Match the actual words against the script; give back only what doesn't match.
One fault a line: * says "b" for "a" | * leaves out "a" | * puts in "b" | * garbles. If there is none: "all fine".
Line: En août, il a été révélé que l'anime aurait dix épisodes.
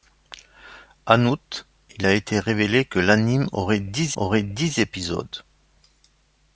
* puts in "aurait dix"